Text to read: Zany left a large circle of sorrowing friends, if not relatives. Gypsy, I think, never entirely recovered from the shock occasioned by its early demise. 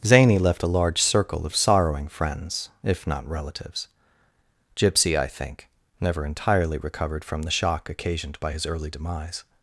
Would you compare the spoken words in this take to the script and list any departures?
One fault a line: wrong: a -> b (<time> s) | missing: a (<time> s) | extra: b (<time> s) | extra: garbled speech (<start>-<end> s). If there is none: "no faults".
wrong: its -> his (8.5 s)